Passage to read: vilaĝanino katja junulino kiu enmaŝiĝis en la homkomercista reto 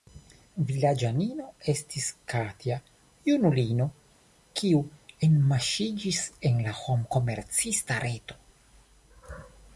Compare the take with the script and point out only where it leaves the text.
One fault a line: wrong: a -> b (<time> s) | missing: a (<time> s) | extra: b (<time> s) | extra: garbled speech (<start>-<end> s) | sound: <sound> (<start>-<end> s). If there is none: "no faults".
extra: estis (1.7 s)